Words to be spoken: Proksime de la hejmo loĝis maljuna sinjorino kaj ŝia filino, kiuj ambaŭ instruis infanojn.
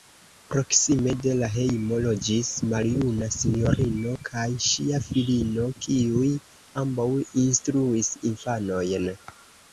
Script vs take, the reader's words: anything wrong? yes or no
no